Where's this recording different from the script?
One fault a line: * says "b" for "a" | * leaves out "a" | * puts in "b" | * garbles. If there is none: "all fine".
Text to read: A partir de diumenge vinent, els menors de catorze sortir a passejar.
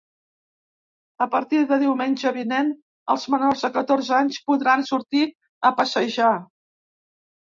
* puts in "anys podran"